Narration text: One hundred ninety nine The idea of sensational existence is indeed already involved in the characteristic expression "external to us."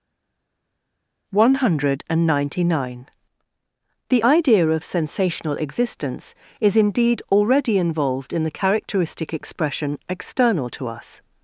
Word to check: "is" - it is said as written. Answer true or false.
true